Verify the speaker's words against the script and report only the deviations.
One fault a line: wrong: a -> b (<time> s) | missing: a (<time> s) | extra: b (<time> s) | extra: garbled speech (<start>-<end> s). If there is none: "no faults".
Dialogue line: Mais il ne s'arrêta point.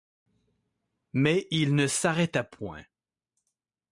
no faults